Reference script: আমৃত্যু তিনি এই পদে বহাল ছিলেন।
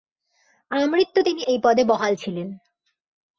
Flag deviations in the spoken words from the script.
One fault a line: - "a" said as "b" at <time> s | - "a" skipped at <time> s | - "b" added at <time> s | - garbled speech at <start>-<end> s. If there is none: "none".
none